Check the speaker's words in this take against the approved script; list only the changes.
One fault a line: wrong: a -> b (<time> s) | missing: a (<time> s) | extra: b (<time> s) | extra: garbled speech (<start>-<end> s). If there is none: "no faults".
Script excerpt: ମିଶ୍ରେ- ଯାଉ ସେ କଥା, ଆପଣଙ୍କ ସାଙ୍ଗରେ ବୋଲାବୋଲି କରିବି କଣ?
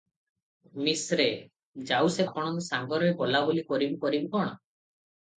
missing: କଥା (2.3 s)
extra: କରିବି (4.0 s)